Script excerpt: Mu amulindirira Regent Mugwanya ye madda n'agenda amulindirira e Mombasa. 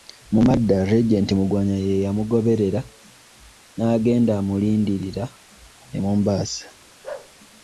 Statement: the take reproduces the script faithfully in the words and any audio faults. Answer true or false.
false